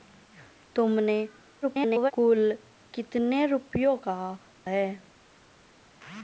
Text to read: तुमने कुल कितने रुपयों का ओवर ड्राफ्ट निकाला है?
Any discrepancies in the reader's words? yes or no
yes